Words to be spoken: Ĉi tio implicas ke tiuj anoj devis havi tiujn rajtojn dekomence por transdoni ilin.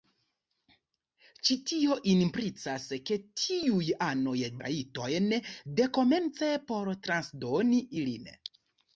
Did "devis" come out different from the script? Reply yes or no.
yes